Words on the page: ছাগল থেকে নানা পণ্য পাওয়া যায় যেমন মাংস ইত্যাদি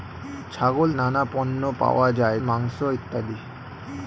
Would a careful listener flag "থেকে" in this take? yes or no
yes